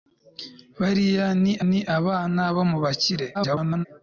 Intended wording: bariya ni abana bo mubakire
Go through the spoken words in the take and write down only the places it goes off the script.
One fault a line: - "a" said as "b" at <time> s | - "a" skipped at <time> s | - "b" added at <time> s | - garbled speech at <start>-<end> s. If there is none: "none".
- "ni" added at 1.7 s
- garbled speech at 3.3-3.9 s